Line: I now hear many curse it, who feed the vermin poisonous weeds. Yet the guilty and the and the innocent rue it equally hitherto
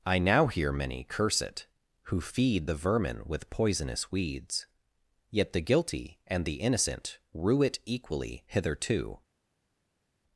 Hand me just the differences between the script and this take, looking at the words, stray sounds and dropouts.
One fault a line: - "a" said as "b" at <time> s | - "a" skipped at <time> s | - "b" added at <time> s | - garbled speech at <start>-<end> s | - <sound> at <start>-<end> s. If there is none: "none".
- "with" added at 3.3 s
- "and the" skipped at 6.6 s